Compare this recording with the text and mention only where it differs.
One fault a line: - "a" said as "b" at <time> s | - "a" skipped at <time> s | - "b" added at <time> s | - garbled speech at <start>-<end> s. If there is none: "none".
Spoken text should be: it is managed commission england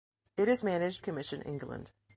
none